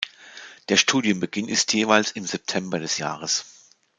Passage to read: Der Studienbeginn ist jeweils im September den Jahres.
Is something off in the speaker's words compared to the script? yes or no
yes